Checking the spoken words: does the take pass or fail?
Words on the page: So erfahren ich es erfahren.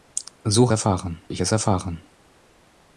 pass